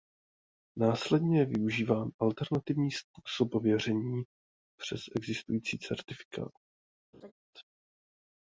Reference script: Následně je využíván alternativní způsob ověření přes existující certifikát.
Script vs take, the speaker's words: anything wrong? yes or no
no